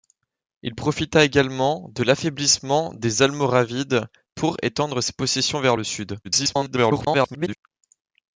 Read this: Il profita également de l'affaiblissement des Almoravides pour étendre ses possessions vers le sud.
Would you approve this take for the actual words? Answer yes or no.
no